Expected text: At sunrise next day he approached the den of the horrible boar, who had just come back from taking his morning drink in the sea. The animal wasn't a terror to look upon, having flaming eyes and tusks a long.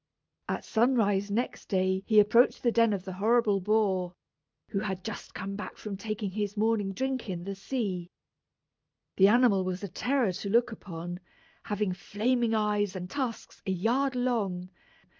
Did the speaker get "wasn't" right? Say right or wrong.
wrong